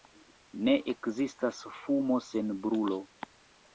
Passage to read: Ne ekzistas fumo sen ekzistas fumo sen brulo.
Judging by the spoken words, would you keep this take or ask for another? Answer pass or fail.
fail